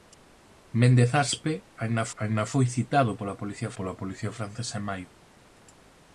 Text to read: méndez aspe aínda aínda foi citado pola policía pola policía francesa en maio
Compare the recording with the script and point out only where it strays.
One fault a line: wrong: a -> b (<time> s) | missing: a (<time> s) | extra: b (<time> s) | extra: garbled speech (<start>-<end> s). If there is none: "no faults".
no faults